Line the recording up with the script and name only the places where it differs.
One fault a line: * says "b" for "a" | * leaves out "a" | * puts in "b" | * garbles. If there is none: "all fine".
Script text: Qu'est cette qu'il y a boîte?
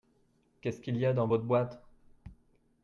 * says "ce" for "cette"
* puts in "dans votre"